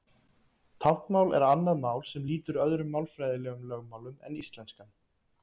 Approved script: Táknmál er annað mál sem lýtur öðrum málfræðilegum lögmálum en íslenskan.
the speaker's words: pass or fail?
pass